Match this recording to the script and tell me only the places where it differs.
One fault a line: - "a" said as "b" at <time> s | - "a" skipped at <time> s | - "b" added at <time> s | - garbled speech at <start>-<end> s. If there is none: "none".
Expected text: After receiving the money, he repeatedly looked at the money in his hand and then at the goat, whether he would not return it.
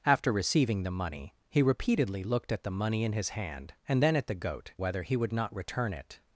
none